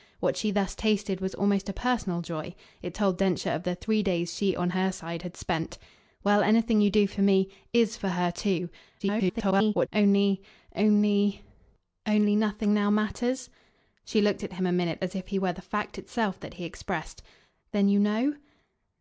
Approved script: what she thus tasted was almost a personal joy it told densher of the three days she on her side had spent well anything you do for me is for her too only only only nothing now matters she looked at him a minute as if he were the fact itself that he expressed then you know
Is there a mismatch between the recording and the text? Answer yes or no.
yes